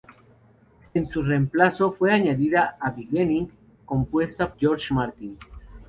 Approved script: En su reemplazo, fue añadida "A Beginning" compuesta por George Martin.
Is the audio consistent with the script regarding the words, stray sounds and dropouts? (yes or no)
no